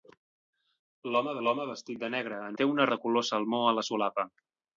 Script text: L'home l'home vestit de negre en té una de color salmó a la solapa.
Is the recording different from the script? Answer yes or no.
no